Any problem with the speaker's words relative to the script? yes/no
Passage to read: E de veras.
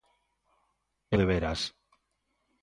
no